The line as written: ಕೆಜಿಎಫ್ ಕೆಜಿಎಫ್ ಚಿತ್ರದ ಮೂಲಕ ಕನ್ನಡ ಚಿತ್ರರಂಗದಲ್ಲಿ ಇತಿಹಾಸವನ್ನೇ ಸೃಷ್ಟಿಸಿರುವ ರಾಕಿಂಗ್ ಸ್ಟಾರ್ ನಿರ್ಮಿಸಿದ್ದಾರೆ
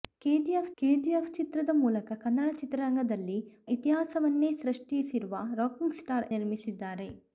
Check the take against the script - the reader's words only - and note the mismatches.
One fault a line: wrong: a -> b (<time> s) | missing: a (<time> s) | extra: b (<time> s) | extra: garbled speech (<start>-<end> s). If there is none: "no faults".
no faults